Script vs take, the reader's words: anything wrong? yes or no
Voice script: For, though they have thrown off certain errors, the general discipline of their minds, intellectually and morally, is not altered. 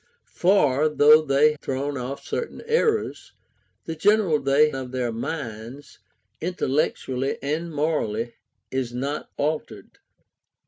yes